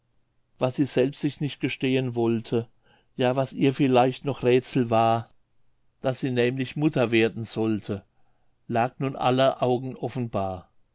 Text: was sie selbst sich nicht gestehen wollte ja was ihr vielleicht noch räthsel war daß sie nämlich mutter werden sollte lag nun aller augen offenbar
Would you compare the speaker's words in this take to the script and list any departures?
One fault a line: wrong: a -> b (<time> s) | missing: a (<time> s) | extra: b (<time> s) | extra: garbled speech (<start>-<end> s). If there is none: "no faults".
no faults